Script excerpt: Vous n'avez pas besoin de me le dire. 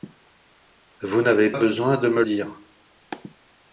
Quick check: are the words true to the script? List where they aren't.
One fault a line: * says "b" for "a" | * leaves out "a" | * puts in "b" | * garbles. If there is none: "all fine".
* leaves out "pas"
* leaves out "le"